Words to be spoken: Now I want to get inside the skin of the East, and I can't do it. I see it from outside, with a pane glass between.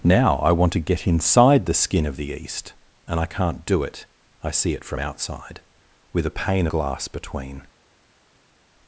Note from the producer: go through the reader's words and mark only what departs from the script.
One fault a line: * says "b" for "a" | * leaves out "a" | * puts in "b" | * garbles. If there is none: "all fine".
all fine